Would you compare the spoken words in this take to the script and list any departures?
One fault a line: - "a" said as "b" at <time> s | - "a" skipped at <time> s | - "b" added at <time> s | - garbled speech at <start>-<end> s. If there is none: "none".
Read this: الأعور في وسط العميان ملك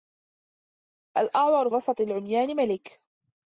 - "في" skipped at 1.7 s